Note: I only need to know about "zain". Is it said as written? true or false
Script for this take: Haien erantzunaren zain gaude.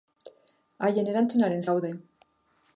false